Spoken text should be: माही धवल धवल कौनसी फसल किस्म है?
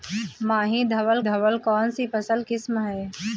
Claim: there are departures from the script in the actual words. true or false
false